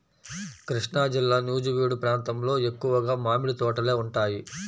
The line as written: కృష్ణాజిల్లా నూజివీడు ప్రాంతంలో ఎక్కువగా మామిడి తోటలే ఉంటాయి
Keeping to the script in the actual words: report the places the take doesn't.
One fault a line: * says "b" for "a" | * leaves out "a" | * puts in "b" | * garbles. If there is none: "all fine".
all fine